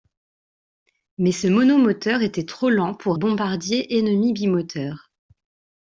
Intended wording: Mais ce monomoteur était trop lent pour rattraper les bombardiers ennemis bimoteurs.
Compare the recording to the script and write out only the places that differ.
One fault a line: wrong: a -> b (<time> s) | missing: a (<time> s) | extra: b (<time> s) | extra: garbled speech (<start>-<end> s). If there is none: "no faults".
missing: rattraper les (3.2 s)